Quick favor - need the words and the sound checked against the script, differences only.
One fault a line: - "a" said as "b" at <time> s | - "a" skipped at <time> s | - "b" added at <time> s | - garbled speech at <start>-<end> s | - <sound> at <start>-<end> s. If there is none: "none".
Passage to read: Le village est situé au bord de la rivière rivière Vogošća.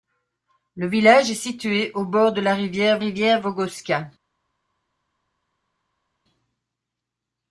none